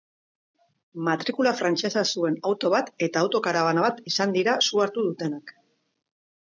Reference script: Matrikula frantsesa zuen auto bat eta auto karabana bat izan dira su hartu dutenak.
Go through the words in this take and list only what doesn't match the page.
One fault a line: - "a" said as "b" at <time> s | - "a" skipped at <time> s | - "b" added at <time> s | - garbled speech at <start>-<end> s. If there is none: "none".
none